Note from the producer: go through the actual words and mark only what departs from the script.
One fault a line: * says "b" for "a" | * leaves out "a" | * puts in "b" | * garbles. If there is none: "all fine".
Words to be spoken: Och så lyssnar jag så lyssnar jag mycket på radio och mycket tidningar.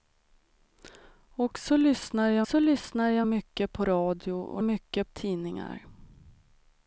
all fine